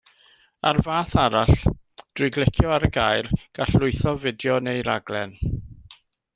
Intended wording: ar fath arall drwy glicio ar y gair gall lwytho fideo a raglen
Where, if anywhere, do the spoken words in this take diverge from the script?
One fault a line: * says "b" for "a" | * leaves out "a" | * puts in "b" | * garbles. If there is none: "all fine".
* says "neu" for "a"